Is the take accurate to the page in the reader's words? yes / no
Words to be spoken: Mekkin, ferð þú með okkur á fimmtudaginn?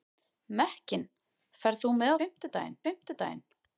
no